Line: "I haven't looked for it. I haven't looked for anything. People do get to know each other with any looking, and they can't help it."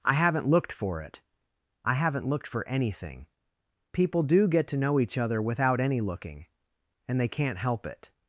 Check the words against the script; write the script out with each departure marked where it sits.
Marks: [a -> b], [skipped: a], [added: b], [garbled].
"I haven't looked for it. I haven't looked for anything. People do get to know each other [with -> without] any looking, and they can't help it."